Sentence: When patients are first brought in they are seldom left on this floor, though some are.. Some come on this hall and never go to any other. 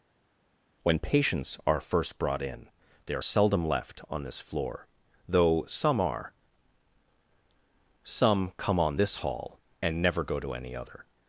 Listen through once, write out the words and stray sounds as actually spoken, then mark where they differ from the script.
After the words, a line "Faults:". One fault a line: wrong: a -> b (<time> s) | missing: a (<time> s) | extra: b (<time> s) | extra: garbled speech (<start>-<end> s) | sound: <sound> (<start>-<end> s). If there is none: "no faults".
When patients are first brought in they are seldom left on this floor, though some are.. Some come on this hall and never go to any other.
Faults:
no faults